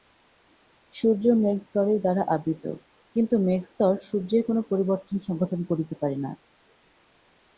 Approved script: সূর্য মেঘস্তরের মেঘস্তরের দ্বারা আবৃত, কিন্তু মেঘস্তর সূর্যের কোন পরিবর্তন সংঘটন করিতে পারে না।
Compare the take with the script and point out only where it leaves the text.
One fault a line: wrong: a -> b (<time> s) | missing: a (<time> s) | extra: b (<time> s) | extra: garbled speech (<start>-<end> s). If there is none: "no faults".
missing: মেঘস্তরের (2.0 s)